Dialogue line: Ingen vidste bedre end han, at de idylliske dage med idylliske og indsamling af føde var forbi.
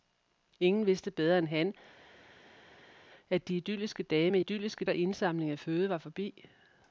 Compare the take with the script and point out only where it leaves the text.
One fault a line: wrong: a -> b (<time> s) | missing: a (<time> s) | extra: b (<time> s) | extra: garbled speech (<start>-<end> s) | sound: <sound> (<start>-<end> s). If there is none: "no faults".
no faults